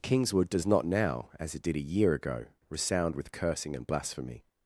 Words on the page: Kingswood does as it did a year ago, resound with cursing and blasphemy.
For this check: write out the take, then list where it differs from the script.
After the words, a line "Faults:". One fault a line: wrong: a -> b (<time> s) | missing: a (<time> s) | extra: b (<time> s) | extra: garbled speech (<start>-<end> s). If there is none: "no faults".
Kingswood does not now, as it did a year ago, resound with cursing and blasphemy.
Faults:
extra: not now (0.7 s)